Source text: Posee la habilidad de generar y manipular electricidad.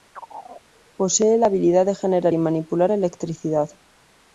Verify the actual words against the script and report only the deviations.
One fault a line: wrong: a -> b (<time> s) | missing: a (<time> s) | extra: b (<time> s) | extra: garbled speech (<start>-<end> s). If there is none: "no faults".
no faults